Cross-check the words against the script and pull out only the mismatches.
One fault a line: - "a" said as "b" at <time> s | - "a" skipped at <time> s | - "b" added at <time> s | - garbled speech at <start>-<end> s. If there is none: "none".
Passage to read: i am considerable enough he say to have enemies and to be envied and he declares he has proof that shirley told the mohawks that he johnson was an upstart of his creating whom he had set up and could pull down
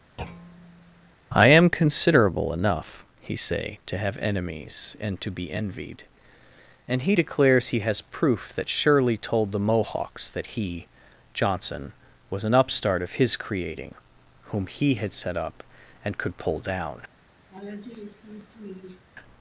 none